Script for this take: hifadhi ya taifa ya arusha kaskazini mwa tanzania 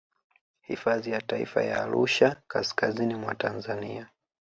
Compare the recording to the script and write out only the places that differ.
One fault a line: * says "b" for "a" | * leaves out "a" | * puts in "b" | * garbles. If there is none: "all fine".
all fine